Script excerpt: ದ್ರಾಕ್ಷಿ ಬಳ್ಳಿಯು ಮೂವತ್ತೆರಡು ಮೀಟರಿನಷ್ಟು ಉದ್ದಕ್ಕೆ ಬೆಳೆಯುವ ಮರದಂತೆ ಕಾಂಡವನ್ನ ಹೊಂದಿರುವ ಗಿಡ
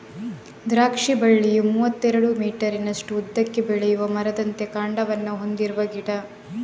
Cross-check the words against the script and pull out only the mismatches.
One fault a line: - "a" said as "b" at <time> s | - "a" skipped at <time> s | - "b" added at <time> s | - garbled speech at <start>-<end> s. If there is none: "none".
none